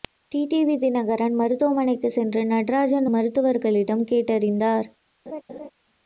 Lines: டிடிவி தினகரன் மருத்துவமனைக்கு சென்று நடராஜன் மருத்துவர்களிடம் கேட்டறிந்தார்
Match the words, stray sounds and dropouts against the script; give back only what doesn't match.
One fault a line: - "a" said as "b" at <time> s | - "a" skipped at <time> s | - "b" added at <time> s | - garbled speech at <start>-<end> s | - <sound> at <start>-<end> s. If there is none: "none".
- laugh at 5.3-5.7 s